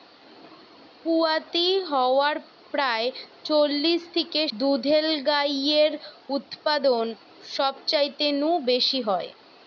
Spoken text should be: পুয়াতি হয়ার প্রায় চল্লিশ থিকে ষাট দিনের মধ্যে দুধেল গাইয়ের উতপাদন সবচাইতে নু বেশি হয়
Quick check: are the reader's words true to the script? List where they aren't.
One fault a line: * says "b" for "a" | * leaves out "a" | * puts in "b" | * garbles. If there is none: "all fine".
* leaves out "ষাট দিনের মধ্যে"